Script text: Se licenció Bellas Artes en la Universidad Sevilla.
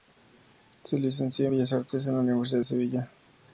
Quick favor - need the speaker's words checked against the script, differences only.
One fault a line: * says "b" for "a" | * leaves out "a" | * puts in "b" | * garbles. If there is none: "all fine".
all fine